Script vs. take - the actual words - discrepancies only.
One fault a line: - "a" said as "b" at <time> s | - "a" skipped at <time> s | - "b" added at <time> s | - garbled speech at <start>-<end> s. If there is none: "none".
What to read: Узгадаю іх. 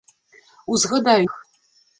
none